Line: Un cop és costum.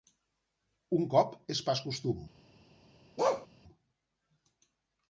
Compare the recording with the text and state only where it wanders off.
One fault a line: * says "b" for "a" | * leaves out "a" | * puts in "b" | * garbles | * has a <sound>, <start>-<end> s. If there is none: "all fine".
* puts in "pas"
* has a bark, 3.2-3.5 s